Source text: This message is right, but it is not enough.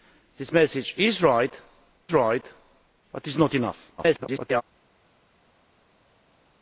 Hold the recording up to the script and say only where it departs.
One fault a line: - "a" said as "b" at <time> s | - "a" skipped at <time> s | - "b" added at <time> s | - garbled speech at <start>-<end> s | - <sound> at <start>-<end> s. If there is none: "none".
- "right" added at 2.1 s
- garbled speech at 4.0-4.6 s